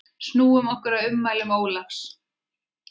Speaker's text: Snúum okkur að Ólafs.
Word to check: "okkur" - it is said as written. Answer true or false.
true